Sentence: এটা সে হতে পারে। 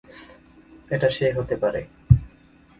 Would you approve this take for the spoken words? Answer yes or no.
yes